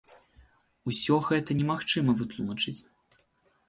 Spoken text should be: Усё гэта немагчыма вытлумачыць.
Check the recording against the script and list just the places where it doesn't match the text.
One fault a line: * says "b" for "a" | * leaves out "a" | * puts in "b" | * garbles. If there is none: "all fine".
all fine